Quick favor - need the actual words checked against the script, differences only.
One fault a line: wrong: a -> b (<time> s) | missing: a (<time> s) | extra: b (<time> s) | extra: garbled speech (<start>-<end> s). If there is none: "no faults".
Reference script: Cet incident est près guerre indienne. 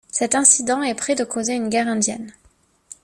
extra: de causer une (1.1 s)